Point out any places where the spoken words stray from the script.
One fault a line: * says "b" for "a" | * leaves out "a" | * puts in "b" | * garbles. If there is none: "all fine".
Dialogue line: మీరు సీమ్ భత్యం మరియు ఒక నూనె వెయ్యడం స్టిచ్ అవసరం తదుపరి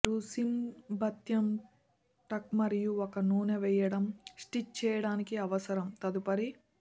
* puts in "టక్"
* puts in "చేయడానికి"